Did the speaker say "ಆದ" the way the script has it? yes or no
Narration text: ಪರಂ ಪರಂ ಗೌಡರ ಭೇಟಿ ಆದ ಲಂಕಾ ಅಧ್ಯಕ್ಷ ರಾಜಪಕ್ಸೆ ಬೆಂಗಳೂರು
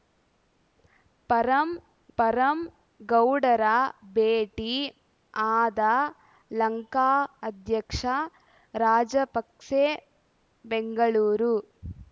yes